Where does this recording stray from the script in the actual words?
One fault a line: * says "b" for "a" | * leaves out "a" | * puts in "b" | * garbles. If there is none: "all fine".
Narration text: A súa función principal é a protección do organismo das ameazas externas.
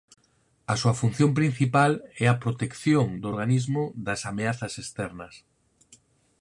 all fine